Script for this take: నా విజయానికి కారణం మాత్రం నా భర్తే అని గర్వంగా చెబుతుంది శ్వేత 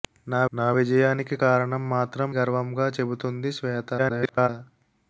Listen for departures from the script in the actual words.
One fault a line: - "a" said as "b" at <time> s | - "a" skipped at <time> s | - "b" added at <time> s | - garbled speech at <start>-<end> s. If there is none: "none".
- "నా" added at 0.5 s
- "నా భర్తే అని" skipped at 2.3 s
- garbled speech at 4.0-4.5 s